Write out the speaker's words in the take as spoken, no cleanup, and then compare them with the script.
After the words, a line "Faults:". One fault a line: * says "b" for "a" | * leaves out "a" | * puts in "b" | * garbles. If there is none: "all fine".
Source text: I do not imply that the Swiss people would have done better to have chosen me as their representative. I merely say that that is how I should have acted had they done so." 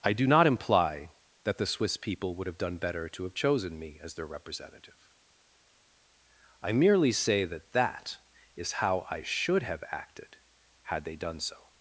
I do not imply that the Swiss people would have done better to have chosen me as their representative. I merely say that that is how I should have acted had they done so."
Faults:
all fine